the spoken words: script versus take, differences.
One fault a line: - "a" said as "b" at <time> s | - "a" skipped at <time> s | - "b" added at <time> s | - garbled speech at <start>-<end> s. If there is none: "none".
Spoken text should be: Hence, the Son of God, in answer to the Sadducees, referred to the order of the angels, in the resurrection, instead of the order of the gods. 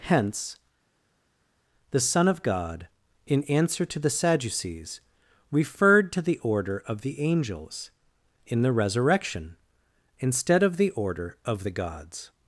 none